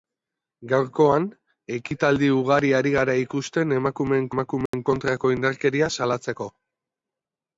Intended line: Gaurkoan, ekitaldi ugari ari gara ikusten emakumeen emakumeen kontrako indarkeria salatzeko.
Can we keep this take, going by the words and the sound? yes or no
no